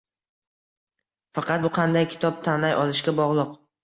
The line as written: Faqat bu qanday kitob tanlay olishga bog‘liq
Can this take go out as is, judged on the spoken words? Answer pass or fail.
pass